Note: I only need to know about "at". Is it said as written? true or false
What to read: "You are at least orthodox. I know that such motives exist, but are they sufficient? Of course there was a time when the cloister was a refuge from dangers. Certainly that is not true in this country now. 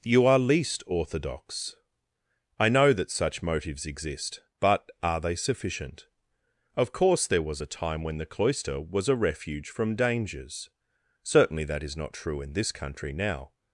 false